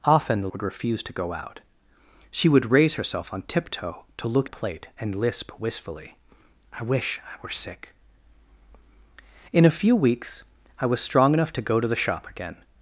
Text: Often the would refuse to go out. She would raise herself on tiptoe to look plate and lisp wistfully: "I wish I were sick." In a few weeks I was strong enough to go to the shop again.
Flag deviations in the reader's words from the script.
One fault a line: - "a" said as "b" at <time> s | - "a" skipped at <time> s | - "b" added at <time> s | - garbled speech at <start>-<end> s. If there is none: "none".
none